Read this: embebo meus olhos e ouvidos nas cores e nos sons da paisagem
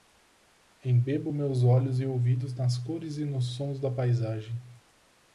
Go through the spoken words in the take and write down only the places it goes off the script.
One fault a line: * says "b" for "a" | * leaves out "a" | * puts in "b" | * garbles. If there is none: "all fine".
all fine